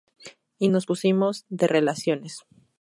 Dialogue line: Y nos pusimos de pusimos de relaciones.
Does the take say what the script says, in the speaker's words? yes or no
no